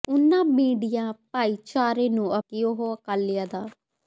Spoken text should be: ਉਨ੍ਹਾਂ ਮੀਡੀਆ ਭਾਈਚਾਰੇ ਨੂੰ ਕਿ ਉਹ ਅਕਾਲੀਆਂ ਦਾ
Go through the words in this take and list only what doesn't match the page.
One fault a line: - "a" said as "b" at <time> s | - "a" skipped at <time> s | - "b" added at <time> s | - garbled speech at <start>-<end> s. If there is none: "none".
none